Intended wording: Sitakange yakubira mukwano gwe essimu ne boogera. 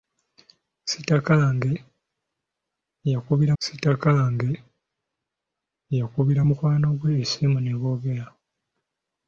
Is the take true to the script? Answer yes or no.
no